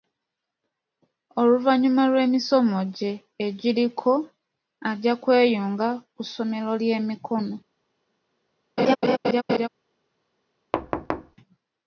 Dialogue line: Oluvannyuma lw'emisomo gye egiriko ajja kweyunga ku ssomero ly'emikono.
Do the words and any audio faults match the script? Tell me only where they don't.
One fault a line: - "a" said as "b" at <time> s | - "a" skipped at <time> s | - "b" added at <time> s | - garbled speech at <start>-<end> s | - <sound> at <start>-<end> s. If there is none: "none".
- laugh at 8.8-9.7 s
- thud at 10.7-11.4 s